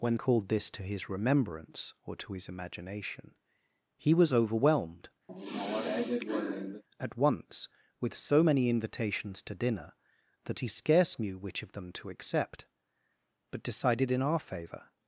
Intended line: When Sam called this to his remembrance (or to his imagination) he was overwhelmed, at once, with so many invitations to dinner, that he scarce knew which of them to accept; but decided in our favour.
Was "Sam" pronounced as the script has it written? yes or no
no